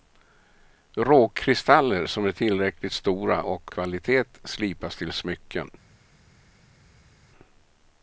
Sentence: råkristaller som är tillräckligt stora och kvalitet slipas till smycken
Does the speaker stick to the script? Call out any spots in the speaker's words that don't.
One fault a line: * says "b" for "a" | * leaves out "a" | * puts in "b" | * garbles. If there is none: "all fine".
all fine